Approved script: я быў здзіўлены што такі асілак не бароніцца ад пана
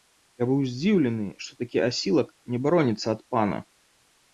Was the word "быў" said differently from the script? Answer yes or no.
no